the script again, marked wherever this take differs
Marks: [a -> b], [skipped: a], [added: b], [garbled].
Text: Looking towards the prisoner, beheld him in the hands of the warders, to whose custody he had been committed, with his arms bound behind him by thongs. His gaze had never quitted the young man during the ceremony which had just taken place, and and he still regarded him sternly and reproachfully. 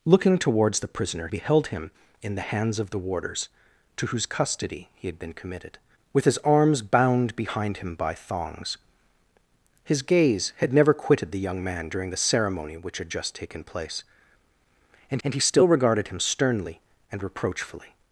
Looking towards the prisoner, beheld him in the hands of the warders, to whose custody he had been committed, with his arms bound behind him by thongs. His gaze had never quitted the young man during the ceremony which had just taken place, and and he still regarded him sternly and reproachfully.